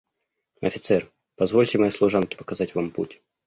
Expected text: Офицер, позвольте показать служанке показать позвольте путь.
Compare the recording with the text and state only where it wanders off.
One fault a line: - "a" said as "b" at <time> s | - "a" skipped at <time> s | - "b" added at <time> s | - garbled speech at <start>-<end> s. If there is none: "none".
- "показать" said as "моей" at 1.8 s
- "позвольте" said as "вам" at 2.7 s